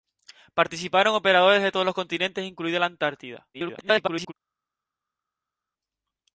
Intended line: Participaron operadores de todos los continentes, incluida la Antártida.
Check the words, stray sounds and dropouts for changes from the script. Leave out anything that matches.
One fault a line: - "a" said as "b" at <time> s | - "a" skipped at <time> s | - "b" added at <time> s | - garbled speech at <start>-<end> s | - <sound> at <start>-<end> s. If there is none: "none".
- garbled speech at 3.5-4.3 s